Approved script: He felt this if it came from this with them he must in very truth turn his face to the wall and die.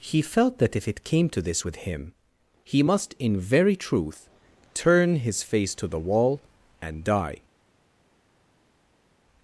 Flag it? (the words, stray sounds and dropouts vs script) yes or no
yes